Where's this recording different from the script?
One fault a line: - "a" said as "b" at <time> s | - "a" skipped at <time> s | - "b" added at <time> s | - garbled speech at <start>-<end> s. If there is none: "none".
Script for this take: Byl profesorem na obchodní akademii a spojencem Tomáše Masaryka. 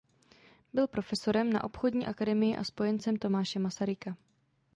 none